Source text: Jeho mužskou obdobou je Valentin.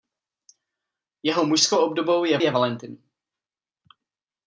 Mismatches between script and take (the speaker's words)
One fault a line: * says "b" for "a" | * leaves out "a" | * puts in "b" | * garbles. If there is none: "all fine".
* puts in "je"